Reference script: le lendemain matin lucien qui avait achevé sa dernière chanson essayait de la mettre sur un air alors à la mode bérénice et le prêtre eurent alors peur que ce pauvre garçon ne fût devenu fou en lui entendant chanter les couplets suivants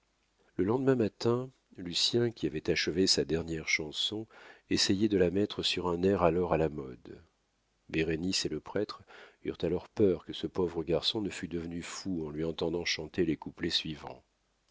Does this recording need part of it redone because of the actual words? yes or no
no